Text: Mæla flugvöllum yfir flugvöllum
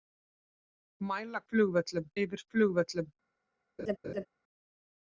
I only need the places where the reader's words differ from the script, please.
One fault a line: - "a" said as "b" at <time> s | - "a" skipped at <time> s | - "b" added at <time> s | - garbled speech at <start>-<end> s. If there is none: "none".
none